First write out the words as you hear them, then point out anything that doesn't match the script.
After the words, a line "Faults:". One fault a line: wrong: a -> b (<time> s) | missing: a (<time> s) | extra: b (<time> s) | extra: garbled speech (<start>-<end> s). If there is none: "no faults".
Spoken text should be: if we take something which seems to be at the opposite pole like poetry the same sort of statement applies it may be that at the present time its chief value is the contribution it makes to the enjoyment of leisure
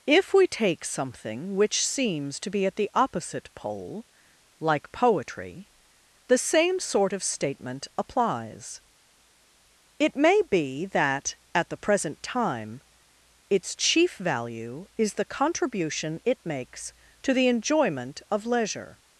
if we take something which seems to be at the opposite pole like poetry the same sort of statement applies it may be that at the present time its chief value is the contribution it makes to the enjoyment of leisure
Faults:
no faults